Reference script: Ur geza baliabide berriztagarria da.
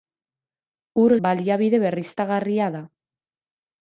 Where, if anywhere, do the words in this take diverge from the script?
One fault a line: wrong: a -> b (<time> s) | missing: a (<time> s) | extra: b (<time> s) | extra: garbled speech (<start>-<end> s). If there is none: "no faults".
missing: geza (1.1 s)